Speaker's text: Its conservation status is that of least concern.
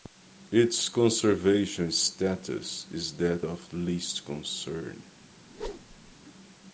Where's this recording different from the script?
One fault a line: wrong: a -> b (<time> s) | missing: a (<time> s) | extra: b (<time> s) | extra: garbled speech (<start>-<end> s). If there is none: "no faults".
no faults